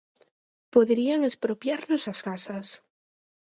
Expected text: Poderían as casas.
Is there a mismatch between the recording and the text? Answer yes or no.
yes